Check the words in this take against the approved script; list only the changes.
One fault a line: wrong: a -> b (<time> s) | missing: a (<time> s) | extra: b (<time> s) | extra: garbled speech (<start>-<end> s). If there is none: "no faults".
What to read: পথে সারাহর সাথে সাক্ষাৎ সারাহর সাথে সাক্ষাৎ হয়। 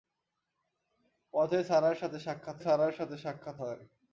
no faults